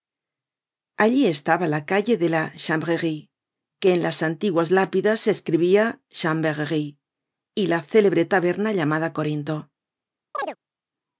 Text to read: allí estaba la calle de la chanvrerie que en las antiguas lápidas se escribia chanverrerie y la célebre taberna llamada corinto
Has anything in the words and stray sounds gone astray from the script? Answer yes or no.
yes